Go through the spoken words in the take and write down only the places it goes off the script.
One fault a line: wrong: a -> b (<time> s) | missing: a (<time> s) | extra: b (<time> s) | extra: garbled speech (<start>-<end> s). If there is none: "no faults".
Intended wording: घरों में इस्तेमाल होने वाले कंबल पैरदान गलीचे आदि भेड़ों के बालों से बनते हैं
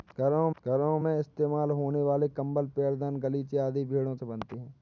extra: घरों (0.6 s)
missing: के बालों (4.1 s)